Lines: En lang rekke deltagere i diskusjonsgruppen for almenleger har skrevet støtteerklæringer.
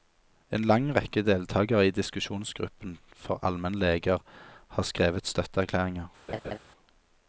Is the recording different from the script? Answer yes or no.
no